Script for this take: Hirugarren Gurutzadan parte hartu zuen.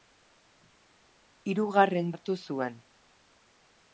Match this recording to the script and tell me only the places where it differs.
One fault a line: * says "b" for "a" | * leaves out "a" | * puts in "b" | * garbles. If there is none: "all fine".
* leaves out "Gurutzadan parte"